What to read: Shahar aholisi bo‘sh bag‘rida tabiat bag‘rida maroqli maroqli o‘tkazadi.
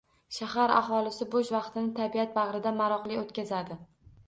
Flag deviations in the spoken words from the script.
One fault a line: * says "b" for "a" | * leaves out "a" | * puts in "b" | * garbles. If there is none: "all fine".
* says "vaqtini" for "bag‘rida"
* leaves out "maroqli"